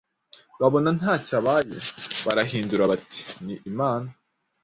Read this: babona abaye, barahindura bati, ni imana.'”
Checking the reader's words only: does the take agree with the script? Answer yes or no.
no